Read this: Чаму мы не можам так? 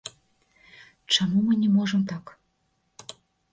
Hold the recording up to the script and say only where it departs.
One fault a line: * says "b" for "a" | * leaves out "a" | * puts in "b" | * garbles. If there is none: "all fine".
all fine